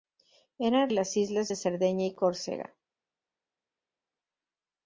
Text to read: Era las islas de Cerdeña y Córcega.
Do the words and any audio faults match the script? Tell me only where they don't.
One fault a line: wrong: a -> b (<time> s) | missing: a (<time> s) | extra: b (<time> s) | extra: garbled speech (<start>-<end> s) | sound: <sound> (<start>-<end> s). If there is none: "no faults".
no faults